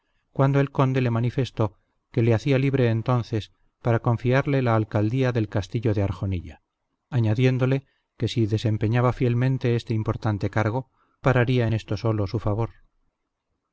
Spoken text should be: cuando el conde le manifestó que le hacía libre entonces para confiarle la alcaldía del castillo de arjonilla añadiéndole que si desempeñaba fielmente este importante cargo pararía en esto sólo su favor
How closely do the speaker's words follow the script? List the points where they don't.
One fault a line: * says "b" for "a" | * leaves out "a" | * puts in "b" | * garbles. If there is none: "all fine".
all fine